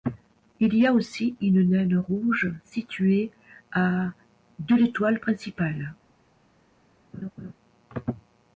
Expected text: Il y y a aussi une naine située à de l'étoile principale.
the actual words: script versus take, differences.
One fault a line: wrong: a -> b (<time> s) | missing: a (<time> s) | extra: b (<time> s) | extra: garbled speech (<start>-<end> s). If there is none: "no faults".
missing: y (0.9 s)
extra: rouge (2.0 s)